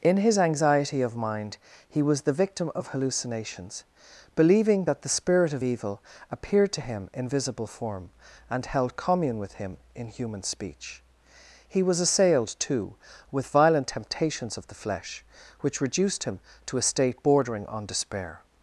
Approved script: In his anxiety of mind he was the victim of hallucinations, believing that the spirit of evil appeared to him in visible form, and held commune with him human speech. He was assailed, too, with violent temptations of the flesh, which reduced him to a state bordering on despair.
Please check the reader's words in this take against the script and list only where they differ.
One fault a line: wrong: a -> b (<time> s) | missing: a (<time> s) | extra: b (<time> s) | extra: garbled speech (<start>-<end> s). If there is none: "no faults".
extra: in (9.9 s)